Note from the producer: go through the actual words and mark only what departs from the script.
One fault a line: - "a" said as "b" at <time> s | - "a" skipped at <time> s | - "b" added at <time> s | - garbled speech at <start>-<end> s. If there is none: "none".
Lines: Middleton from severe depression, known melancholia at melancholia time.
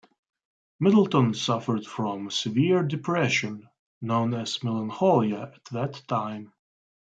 - "suffered" added at 1.4 s
- "as" added at 4.3 s
- "melancholia" said as "that" at 5.7 s